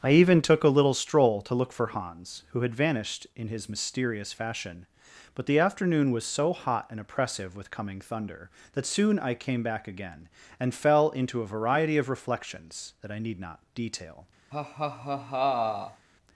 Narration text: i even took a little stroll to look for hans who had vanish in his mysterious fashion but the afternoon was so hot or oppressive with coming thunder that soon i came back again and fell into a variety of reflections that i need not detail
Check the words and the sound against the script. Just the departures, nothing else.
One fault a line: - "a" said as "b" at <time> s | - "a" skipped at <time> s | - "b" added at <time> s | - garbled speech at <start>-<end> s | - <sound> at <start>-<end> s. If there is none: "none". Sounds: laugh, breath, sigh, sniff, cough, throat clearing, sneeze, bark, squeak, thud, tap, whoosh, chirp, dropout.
- "vanish" said as "vanished" at 2.7 s
- "or" said as "and" at 6.9 s
- laugh at 14.5-16.1 s